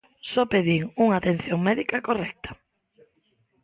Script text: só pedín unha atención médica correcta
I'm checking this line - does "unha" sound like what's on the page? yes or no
yes